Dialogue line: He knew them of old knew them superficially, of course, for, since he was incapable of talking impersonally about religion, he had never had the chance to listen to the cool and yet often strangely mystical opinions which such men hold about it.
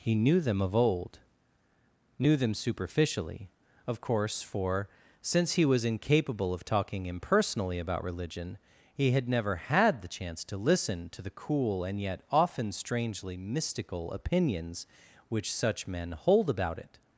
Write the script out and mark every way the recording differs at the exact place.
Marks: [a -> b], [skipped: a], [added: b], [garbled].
He knew them of old knew them superficially, of course, for, since he was incapable of talking impersonally about religion, he had never had the chance to listen to the cool and yet often strangely mystical opinions which such men hold about it.